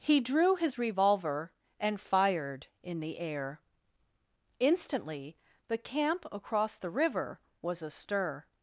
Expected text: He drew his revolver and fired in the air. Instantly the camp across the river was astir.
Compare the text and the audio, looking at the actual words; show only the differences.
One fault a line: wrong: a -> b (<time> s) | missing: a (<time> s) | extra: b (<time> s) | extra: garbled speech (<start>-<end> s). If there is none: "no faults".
no faults